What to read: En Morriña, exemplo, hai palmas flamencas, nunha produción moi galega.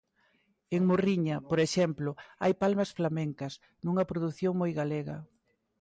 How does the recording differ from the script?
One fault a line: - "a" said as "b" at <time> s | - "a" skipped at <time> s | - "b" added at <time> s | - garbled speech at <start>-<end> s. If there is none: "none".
- "por" added at 1.5 s